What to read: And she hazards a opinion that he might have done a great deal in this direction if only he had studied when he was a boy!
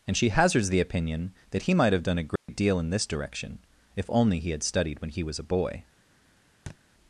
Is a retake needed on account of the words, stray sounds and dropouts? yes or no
yes